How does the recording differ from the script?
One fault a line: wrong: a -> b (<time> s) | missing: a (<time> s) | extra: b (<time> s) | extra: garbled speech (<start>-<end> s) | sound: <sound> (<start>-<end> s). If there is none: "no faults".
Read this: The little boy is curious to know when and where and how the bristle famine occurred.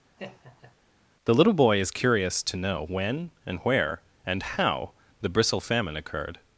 sound: laugh (0.2-0.8 s)